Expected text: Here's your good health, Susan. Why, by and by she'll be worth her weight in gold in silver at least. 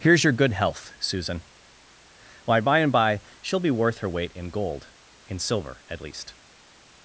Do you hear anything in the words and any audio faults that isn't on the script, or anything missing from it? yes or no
no